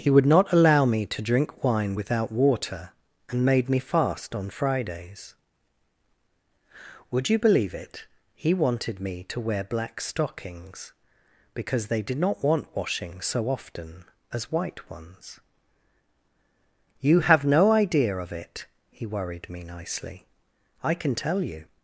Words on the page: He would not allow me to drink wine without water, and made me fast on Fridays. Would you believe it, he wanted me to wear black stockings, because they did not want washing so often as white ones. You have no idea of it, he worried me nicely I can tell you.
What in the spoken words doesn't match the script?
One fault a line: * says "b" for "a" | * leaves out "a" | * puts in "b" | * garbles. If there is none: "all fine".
all fine